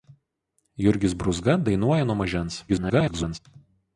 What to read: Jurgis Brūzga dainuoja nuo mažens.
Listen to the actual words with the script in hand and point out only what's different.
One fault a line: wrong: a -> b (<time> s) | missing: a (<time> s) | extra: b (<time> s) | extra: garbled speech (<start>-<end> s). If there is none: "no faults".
extra: garbled speech (2.7-3.4 s)